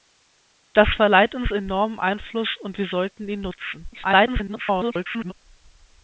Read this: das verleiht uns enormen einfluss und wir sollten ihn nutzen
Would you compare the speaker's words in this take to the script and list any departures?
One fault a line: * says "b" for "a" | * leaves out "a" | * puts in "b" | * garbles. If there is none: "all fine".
* garbles